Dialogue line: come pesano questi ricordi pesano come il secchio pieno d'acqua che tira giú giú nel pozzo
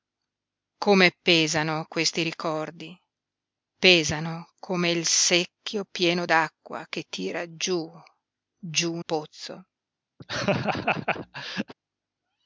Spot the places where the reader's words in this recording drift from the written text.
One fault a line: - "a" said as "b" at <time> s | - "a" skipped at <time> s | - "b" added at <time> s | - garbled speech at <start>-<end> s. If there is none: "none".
- "nel" skipped at 9.0 s